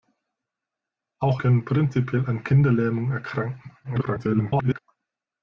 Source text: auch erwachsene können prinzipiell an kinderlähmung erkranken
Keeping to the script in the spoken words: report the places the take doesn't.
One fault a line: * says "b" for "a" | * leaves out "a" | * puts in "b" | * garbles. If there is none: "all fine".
* leaves out "erwachsene"
* garbles